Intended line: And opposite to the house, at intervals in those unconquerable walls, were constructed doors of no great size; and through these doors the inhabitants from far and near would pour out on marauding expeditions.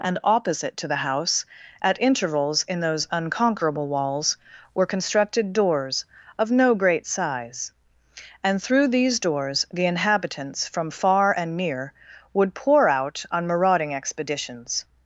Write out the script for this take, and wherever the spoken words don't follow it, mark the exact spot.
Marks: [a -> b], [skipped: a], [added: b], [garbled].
And opposite to the house, at intervals in those unconquerable walls, were constructed doors of no great size; and through these doors the inhabitants from far and near would pour out on marauding expeditions.